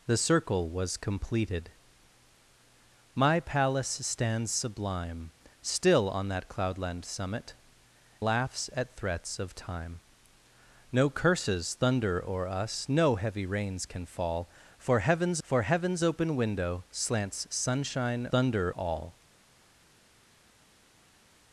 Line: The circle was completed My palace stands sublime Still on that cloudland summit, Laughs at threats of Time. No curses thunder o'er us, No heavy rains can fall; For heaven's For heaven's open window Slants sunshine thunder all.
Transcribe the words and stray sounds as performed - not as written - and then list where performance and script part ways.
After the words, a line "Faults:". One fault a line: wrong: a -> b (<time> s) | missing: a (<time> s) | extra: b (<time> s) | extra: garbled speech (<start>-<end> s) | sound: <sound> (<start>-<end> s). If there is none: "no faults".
The circle was completed My palace stands sublime Still on that cloudland summit, Laughs at threats of Time. No curses thunder o'er us, No heavy rains can fall; For heaven's For heaven's open window Slants sunshine thunder all.
Faults:
no faults